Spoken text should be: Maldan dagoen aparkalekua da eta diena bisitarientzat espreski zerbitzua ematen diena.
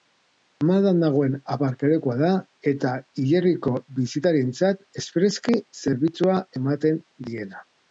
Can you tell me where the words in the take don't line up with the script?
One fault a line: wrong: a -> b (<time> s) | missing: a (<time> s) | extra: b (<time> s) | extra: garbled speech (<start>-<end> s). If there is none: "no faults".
wrong: diena -> hilerriko (3.2 s)